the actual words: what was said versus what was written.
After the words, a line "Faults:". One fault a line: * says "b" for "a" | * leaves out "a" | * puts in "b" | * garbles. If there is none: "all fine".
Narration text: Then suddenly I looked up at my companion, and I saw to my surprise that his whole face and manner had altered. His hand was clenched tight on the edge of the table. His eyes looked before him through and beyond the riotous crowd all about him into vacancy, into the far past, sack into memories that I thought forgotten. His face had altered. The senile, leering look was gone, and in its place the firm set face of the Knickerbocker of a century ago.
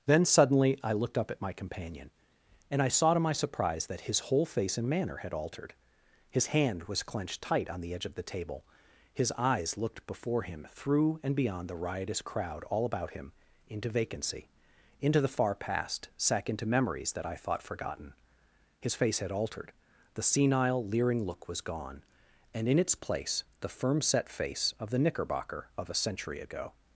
Then suddenly I looked up at my companion, and I saw to my surprise that his whole face and manner had altered. His hand was clenched tight on the edge of the table. His eyes looked before him through and beyond the riotous crowd all about him into vacancy, into the far past, sack into memories that I thought forgotten. His face had altered. The senile, leering look was gone, and in its place the firm set face of the Knickerbocker of a century ago.
Faults:
all fine